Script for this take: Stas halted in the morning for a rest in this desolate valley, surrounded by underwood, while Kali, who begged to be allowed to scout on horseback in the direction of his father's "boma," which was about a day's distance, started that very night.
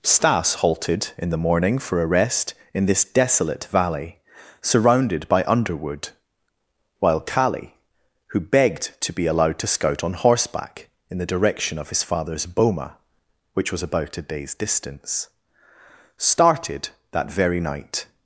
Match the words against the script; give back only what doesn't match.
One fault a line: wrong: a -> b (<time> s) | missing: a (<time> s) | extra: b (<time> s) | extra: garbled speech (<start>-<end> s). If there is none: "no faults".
no faults